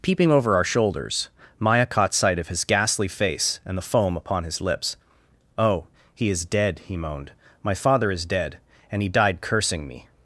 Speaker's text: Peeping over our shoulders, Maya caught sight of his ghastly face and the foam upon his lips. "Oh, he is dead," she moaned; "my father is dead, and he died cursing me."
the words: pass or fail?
fail